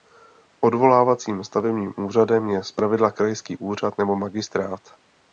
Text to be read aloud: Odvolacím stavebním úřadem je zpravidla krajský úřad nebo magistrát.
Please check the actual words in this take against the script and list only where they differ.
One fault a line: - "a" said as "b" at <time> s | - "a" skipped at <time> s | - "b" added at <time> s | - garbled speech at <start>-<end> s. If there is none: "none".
none